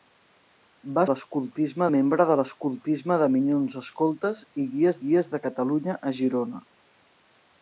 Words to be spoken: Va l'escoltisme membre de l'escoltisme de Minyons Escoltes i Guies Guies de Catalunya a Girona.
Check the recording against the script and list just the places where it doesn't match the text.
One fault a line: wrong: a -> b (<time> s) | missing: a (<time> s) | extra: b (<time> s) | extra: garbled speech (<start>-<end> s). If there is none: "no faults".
no faults